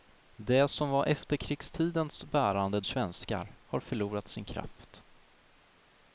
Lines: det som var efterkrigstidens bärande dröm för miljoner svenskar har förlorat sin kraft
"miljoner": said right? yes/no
no